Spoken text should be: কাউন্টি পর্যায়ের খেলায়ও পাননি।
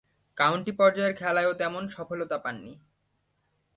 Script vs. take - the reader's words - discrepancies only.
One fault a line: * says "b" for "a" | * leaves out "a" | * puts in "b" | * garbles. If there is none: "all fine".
* puts in "তেমন সফলতা"